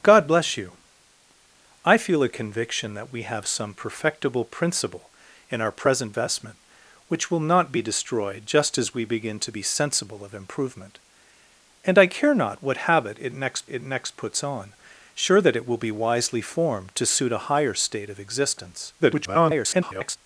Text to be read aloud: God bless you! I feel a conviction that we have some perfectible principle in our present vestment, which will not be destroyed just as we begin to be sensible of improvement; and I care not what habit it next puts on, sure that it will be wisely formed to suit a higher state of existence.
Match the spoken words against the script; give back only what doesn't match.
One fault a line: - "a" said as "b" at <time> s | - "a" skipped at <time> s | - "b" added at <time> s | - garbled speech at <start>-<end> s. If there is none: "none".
- "it next" added at 13.7 s
- garbled speech at 19.0-20.2 s